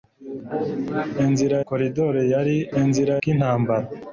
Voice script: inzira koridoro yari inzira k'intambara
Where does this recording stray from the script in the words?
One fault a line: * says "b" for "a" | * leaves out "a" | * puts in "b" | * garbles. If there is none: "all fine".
all fine